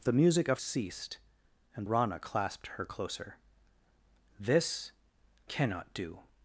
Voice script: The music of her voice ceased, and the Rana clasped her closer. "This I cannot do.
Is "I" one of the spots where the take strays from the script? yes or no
yes